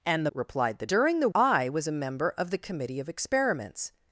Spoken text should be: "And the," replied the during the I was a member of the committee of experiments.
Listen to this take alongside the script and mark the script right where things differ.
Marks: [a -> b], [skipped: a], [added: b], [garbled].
"And the," replied the during the I was a member of the committee of experiments.